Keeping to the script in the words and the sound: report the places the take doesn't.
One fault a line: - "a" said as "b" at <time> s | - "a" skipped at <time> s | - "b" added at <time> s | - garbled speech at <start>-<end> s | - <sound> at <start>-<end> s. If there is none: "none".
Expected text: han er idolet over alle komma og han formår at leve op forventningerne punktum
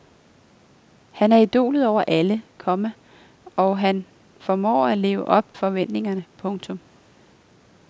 none